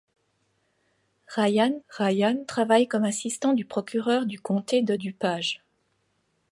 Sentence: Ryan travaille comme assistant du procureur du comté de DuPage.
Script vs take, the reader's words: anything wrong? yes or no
yes